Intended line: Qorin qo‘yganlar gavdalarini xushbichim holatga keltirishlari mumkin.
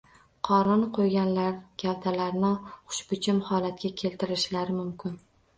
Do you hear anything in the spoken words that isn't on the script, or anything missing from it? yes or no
no